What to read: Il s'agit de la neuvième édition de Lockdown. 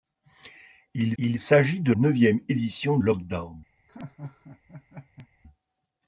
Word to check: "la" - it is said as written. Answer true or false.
false